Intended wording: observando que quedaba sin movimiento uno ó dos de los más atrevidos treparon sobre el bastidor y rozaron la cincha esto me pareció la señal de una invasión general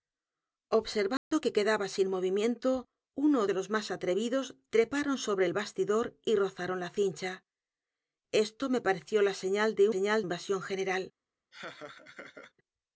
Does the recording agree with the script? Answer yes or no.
no